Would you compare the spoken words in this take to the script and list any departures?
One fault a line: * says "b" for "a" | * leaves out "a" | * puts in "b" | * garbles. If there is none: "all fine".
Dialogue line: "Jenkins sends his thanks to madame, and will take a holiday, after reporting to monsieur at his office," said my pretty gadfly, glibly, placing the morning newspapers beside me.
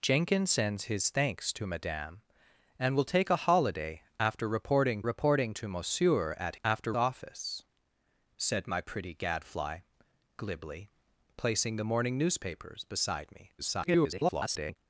* puts in "reporting"
* says "after" for "his"
* garbles